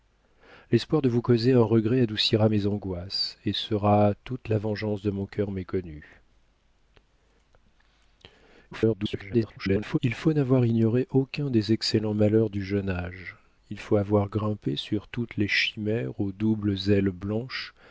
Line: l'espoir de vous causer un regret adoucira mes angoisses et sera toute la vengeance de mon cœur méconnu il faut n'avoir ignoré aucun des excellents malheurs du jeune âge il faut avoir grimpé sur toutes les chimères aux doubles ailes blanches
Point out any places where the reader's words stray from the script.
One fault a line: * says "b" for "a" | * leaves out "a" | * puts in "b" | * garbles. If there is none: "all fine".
* garbles